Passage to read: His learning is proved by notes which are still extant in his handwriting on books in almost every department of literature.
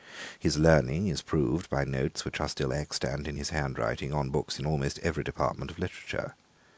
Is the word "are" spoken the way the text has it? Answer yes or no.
yes